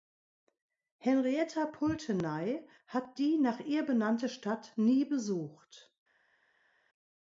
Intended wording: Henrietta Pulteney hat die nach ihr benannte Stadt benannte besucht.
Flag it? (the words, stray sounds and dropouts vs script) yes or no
yes